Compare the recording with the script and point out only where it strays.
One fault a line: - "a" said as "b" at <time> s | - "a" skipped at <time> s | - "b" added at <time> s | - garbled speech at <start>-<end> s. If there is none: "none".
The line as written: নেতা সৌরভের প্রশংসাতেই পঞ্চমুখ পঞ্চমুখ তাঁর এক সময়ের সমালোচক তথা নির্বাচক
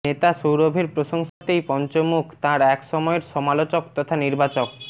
- "পঞ্চমুখ" skipped at 2.2 s